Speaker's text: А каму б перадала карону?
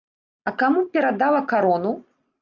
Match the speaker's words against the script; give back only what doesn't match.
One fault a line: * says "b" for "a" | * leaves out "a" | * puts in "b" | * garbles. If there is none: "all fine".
all fine